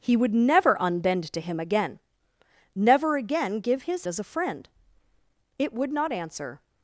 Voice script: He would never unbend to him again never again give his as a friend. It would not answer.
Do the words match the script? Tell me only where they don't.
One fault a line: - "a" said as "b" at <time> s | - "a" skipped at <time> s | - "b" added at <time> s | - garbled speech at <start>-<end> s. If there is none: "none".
none